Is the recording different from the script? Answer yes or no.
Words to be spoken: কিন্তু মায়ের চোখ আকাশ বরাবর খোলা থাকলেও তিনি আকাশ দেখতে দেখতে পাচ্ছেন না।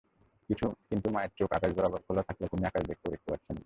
no